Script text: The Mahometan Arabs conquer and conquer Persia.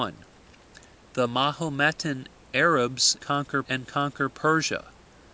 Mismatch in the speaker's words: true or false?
false